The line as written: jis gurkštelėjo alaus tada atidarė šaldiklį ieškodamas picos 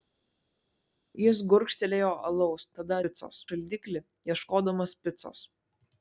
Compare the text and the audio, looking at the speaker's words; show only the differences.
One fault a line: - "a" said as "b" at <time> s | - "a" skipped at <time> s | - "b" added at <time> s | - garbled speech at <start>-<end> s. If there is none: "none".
- "atidarė" said as "picos" at 3.1 s